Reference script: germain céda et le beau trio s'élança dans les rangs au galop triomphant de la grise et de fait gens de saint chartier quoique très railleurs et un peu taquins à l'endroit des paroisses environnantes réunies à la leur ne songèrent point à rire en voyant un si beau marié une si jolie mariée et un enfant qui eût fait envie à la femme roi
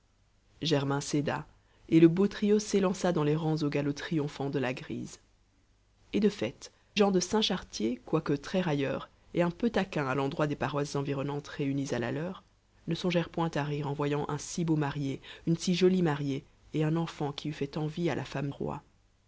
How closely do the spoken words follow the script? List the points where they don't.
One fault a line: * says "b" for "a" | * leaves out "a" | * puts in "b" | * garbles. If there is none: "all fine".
all fine